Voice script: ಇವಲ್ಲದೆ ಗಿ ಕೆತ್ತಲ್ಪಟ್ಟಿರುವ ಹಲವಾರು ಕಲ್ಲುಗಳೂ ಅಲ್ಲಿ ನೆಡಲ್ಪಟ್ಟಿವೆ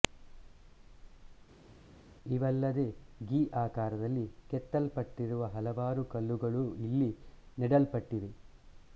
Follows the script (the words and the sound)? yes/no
no